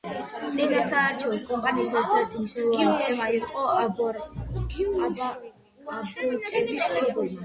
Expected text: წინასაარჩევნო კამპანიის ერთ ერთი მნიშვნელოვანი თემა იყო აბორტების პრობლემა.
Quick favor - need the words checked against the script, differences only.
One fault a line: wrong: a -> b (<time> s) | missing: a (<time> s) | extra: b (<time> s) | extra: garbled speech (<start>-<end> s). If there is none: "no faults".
no faults